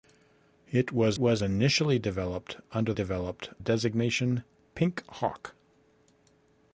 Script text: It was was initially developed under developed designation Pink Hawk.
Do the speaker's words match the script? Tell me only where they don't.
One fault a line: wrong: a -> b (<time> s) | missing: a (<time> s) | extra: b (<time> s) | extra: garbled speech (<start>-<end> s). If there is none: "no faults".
no faults